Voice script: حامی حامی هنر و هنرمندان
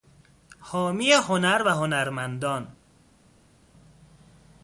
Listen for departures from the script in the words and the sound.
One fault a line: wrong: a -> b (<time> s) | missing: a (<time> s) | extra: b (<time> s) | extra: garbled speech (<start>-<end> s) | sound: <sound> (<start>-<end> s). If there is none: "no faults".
missing: حامی (1.1 s)